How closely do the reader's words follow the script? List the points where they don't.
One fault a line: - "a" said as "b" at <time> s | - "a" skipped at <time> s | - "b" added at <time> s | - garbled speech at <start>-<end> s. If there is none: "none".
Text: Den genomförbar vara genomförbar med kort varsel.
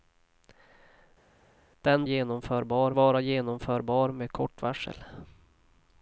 none